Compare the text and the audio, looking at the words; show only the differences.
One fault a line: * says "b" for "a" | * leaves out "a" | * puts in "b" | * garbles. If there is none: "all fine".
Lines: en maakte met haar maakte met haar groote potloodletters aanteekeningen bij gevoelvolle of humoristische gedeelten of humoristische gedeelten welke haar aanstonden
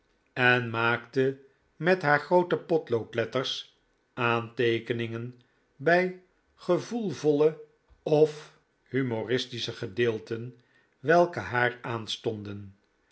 * leaves out "maakte met haar"
* leaves out "of humoristische gedeelten"